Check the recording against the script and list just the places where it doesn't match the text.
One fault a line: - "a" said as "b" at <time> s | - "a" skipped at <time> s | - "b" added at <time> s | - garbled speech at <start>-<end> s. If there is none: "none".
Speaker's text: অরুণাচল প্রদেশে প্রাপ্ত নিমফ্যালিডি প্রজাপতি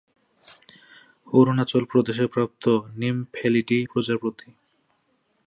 none